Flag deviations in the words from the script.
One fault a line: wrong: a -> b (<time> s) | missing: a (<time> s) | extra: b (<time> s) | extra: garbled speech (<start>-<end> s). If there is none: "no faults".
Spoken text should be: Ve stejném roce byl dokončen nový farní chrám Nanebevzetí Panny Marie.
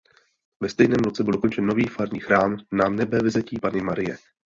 no faults